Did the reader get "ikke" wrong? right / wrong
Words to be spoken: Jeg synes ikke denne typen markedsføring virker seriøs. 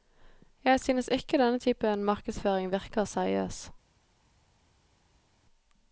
right